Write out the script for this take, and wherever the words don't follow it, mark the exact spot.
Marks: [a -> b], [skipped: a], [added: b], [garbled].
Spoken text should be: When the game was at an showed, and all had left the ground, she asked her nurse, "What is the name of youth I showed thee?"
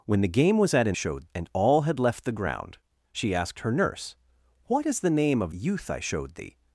When the game was at an showed, and all had left the ground, she asked her nurse, "What is the name of youth I showed thee?"